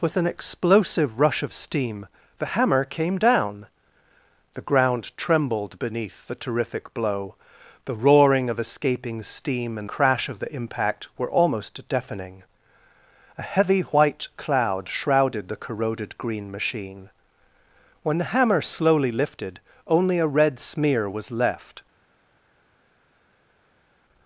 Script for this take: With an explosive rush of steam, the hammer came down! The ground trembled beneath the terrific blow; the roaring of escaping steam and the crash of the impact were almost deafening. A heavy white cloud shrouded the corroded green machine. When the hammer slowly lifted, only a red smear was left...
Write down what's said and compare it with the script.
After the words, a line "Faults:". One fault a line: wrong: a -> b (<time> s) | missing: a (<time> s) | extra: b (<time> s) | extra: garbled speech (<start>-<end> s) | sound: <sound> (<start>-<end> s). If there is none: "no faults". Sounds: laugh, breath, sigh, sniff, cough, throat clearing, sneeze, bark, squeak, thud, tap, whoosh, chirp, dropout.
With an explosive rush of steam, the hammer came down! The ground trembled beneath the terrific blow; the roaring of escaping steam and crash of the impact were almost deafening. A heavy white cloud shrouded the corroded green machine. When the hammer slowly lifted, only a red smear was left...
Faults:
missing: the (9.9 s)